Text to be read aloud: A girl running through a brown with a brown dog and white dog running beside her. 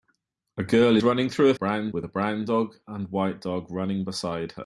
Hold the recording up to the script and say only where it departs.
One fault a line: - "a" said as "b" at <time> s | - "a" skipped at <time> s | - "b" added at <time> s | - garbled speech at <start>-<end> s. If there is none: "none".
none